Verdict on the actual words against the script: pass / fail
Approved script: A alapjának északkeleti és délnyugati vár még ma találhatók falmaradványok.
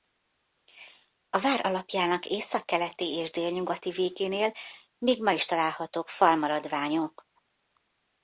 fail